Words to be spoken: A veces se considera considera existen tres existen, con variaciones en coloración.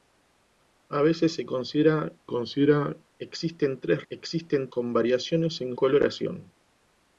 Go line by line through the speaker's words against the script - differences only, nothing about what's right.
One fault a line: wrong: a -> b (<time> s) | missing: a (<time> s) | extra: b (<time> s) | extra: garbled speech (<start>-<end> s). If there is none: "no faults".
no faults